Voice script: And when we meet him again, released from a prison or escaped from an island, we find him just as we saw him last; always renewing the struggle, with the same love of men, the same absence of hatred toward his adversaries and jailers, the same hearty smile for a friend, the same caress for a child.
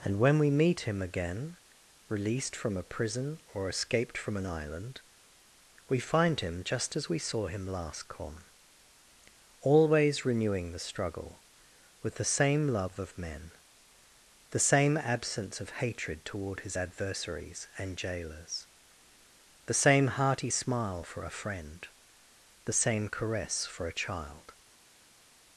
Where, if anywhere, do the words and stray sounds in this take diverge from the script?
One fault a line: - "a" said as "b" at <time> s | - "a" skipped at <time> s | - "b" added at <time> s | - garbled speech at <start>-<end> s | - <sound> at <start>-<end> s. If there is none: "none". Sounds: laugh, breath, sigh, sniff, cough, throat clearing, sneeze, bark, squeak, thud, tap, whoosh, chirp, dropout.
- "come" added at 8.1 s